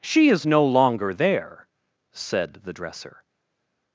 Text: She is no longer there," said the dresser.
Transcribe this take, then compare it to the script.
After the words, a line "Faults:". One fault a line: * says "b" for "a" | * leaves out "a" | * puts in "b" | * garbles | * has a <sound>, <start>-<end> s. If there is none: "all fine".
She is no longer there," said the dresser.
Faults:
all fine